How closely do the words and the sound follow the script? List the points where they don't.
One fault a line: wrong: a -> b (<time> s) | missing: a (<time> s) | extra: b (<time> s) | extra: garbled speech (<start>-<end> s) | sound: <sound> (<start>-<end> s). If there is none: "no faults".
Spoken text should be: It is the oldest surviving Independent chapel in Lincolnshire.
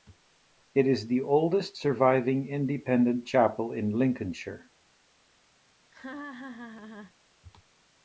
sound: laugh (5.9-7.1 s)